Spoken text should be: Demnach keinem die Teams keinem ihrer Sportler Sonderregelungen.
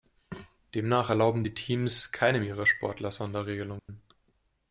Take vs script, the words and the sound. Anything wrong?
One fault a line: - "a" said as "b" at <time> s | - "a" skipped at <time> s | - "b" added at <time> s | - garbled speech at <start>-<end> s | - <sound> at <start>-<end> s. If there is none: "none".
- "keinem" said as "erlauben" at 1.1 s
- dropout at 3.8-3.9 s